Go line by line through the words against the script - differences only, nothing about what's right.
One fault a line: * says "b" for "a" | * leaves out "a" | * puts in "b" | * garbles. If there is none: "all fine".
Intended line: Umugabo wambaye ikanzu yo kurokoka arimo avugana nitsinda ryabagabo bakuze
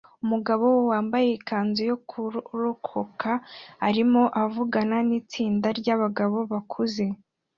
all fine